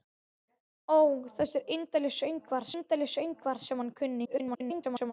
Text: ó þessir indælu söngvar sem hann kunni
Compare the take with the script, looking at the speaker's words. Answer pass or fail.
fail